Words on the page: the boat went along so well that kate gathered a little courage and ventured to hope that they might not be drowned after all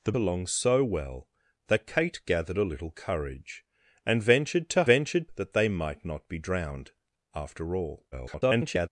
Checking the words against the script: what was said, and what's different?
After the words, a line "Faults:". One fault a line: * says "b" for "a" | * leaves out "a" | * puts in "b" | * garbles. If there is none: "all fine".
the along so well that kate gathered a little courage and ventured to ventured that they might not be drowned after all [garbled]
Faults:
* leaves out "boat went"
* says "ventured" for "hope"
* garbles